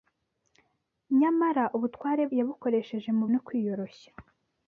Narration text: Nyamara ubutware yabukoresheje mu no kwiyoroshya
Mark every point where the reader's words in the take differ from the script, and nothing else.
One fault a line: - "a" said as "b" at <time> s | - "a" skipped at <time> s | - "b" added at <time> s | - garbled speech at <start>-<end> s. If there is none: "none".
none